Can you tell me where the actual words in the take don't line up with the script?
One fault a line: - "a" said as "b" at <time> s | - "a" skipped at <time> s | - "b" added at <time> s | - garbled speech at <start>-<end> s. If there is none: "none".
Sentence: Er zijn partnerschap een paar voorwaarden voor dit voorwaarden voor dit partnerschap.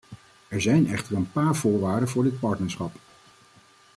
- "partnerschap" said as "echter" at 0.9 s
- "voorwaarden voor dit" skipped at 2.4 s